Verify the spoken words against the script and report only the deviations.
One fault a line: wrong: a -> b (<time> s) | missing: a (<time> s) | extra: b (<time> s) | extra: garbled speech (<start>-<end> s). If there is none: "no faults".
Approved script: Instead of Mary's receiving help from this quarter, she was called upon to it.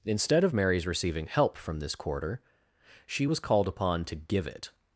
extra: give (4.1 s)